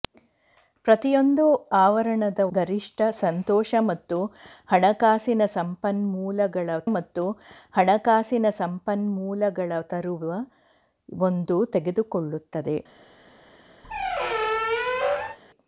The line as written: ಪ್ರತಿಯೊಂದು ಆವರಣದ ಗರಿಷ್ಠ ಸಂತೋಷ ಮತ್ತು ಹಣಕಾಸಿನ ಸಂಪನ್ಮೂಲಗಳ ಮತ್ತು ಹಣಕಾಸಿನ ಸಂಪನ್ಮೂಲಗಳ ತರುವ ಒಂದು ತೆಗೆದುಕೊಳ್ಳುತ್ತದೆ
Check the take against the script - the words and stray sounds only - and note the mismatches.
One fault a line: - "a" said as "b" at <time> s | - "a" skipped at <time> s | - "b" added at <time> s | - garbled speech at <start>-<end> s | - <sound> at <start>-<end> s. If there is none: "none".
- squeak at 13.8-15.4 s